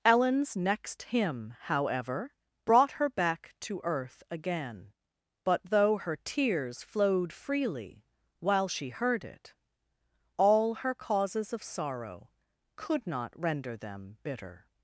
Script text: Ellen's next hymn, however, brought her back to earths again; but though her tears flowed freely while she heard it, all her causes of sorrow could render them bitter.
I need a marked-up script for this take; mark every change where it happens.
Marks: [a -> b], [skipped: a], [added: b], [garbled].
Ellen's next hymn, however, brought her back to [earths -> earth] again; but though her tears flowed freely while she heard it, all her causes of sorrow could [added: not] render them bitter.